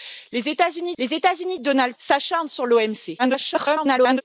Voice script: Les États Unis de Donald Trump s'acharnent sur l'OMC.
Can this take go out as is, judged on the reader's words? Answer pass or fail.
fail